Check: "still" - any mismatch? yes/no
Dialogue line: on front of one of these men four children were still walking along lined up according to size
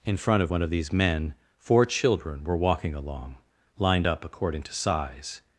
yes